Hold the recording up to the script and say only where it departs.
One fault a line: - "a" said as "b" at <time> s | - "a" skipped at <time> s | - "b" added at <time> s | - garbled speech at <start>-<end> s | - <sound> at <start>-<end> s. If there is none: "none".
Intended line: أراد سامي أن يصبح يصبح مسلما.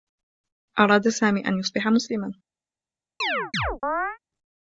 - "يصبح" skipped at 1.9 s
- chirp at 3.2-4.2 s